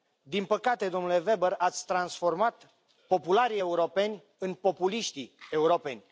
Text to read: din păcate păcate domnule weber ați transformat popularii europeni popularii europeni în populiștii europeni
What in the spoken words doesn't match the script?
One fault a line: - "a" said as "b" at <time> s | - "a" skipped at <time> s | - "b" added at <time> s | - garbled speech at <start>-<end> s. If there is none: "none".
- "păcate" skipped at 0.9 s
- "popularii europeni" skipped at 4.2 s